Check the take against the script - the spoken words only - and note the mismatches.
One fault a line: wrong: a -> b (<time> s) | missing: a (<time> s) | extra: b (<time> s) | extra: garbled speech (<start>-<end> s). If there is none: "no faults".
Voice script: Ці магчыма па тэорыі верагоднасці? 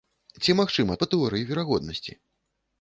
no faults